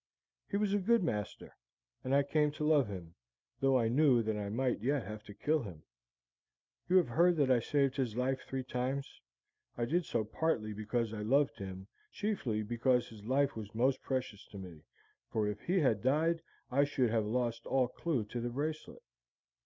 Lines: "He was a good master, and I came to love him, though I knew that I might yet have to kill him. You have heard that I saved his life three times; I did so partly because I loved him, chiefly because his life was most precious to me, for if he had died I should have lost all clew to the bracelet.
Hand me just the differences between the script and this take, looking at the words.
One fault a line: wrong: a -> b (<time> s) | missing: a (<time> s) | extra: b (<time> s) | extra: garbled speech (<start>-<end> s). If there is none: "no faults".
no faults